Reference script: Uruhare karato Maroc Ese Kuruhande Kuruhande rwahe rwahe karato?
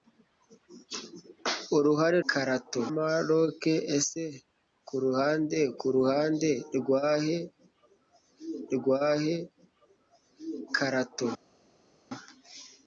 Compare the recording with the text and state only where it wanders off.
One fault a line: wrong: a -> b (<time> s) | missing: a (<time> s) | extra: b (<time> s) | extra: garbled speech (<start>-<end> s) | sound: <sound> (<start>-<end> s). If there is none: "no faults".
no faults